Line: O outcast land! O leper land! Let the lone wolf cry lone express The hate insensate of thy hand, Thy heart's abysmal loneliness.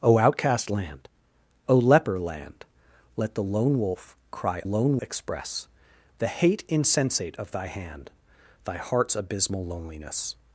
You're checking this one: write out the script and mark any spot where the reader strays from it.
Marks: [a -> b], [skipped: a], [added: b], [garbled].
O outcast land! O leper land! Let the lone wolf cry lone express The hate insensate of thy hand, Thy heart's abysmal loneliness.